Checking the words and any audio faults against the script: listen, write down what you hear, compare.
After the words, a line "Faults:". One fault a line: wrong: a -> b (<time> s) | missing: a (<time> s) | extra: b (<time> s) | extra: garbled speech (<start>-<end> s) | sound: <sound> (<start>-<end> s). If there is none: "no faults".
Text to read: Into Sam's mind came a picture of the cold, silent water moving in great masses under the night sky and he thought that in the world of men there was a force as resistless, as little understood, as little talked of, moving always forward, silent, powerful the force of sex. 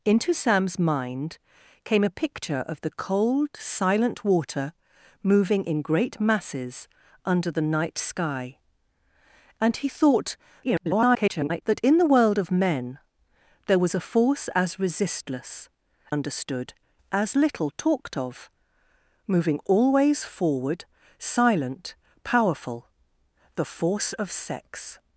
Into Sam's mind came a picture of the cold, silent water moving in great masses under the night sky and he thought [garbled] that in the world of men there was a force as resistless, understood, as little talked of, moving always forward, silent, powerful the force of sex.
Faults:
extra: garbled speech (10.6-11.6 s)
missing: as little (15.7 s)